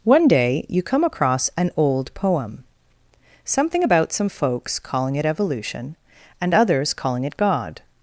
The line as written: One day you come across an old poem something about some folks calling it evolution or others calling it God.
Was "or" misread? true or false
true